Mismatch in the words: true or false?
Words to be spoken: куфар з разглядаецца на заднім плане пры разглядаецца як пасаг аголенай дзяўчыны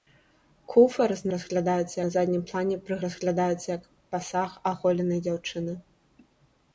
false